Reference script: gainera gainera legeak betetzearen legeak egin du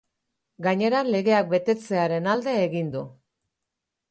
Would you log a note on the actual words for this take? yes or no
yes